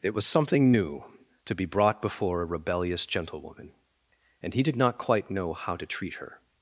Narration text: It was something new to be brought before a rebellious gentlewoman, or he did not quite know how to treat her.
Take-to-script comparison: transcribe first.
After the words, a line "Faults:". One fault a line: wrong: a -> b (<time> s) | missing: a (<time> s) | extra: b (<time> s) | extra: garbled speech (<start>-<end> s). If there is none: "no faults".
It was something new to be brought before a rebellious gentlewoman, and he did not quite know how to treat her.
Faults:
wrong: or -> and (4.4 s)